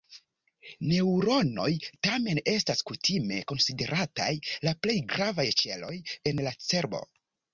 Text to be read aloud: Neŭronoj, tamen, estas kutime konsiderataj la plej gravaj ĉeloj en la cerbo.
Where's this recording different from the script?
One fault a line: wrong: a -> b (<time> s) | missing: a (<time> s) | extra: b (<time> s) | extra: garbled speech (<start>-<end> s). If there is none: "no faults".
no faults